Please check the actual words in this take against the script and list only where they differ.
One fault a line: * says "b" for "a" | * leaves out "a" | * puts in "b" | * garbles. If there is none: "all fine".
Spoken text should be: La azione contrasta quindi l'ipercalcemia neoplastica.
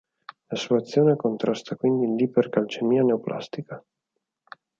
* puts in "sua"